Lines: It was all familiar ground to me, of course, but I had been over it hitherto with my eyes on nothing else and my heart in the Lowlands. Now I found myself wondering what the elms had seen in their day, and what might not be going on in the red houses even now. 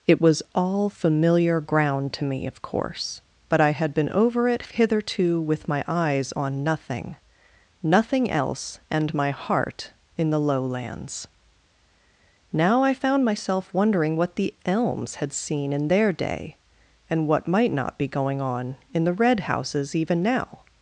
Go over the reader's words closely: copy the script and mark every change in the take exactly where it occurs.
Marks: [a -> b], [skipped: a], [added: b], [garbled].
It was all familiar ground to me, of course, but I had been over it hitherto with my eyes on nothing [added: nothing] else and my heart in the Lowlands. Now I found myself wondering what the elms had seen in their day, and what might not be going on in the red houses even now.